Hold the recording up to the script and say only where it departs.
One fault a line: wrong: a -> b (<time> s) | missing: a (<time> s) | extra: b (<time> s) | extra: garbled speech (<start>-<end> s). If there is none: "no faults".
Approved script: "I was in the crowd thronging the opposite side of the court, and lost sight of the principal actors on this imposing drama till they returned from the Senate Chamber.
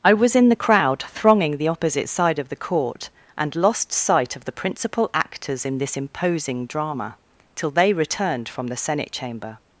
wrong: on -> in (5.7 s)